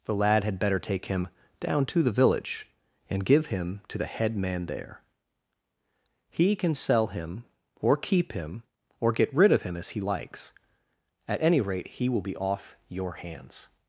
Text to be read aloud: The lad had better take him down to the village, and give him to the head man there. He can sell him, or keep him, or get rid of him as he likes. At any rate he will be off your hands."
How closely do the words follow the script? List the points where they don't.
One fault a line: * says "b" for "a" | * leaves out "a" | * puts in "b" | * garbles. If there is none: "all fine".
all fine